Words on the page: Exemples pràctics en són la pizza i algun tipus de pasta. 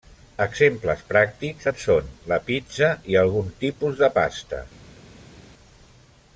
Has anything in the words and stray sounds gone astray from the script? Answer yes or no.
no